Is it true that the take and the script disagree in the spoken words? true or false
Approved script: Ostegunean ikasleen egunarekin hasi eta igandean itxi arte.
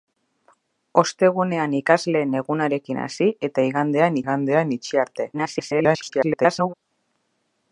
true